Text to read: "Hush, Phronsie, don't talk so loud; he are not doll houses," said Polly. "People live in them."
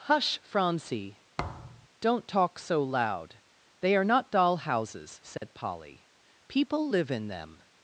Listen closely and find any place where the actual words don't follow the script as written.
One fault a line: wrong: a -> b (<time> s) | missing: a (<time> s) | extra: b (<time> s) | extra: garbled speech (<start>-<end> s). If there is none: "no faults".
wrong: he -> they (3.8 s)